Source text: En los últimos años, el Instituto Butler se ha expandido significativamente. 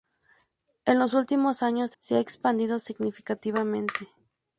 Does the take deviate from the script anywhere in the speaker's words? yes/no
yes